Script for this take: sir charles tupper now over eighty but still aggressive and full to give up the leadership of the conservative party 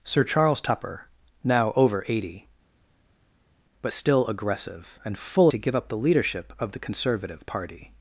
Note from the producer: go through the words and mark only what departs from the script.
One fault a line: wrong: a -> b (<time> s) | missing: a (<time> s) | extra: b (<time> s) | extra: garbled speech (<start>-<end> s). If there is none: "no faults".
no faults